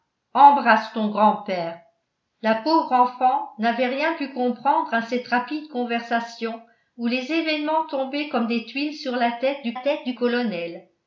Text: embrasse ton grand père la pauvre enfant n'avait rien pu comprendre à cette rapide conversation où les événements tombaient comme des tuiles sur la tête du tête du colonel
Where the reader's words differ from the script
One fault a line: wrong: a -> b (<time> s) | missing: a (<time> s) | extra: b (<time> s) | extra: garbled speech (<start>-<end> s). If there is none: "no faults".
no faults